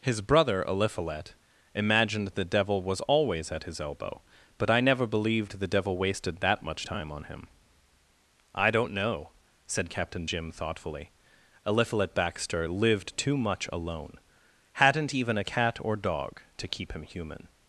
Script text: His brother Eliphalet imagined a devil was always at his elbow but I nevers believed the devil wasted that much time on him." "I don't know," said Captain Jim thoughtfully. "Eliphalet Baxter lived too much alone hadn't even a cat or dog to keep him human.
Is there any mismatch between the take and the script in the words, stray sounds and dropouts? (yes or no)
yes